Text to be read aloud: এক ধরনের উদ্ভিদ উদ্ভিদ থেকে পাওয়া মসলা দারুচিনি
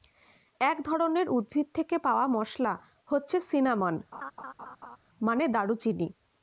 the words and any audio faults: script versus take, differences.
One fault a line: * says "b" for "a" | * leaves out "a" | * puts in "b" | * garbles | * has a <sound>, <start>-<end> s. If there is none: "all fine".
* leaves out "উদ্ভিদ"
* puts in "হচ্ছে সিনামন মানে"
* has a laugh, 4.1-5.0 s